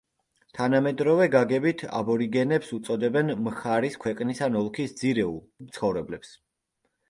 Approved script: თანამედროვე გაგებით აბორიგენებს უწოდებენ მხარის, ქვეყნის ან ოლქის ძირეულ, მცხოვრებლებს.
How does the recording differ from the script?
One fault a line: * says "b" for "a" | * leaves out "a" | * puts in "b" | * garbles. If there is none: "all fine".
all fine